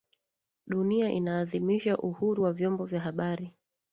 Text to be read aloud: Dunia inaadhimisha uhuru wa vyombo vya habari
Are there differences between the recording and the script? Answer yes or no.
no